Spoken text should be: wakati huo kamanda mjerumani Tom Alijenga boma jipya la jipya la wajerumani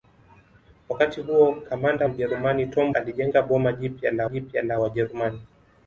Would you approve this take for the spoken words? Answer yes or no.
yes